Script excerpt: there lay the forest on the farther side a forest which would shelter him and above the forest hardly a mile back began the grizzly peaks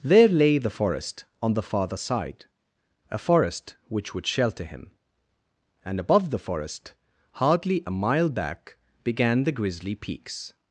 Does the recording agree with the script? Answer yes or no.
yes